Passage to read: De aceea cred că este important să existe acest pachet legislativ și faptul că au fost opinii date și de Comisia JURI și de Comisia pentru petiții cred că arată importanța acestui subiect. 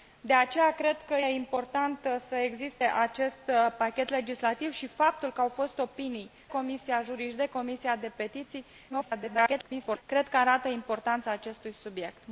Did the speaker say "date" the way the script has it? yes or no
no